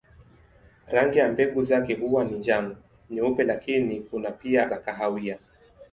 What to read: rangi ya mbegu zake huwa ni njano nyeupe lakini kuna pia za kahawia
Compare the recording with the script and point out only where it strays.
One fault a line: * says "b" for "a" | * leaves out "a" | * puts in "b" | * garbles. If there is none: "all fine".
all fine